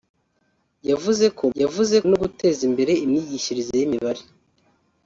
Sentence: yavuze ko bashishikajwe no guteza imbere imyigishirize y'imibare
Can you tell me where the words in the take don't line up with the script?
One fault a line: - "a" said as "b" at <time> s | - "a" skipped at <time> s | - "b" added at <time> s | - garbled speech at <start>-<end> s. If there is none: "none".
- "bashishikajwe" said as "yavuze" at 1.6 s